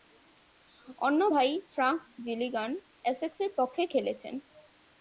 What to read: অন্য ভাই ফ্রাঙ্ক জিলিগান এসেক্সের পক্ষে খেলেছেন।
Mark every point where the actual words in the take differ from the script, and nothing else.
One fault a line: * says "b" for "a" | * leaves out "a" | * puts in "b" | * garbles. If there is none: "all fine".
all fine